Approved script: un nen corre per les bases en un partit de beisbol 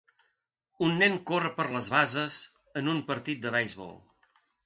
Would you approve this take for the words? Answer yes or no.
yes